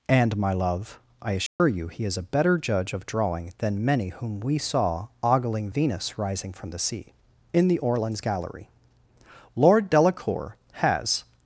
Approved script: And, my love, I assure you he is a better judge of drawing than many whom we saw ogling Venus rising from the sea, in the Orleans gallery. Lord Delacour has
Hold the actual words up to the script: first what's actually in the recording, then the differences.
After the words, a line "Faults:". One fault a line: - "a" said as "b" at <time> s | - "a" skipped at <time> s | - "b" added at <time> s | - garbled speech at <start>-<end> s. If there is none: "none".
And, my love, I assure you he is a better judge of drawing than many whom we saw ogling Venus rising from the sea, in the Orleans gallery. Lord Delacour has
Faults:
none